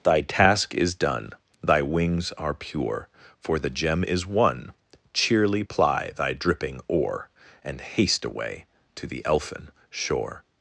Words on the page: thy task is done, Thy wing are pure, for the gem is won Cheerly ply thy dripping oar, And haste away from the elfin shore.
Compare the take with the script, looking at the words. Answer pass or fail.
fail